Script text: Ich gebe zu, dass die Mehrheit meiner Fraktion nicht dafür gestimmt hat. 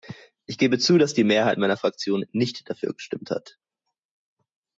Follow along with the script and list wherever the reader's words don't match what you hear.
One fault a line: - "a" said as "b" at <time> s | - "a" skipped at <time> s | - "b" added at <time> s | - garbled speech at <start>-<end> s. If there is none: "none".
none